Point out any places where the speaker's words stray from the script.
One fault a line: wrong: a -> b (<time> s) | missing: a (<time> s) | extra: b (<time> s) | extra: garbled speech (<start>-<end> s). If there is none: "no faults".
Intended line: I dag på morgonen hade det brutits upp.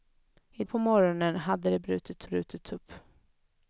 missing: dag (0.6 s)
extra: brutits (2.2 s)